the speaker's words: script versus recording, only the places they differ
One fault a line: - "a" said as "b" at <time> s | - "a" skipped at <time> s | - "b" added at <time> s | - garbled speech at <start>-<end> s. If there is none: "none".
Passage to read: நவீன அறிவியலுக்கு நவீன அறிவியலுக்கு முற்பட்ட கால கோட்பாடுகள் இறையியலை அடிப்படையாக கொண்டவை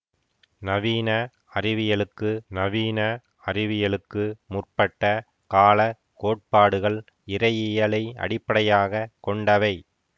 none